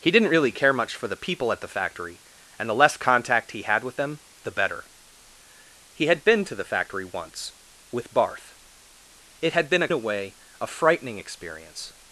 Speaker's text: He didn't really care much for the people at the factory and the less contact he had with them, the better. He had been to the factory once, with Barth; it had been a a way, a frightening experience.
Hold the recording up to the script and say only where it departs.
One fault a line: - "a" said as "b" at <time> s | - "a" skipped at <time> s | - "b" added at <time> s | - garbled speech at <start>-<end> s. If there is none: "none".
none